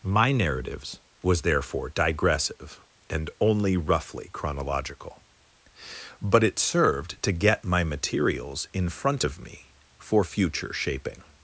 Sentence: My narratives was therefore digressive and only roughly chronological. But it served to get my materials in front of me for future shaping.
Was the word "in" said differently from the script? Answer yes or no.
no